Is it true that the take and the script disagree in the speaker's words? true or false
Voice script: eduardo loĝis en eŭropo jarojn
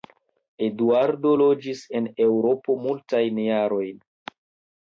true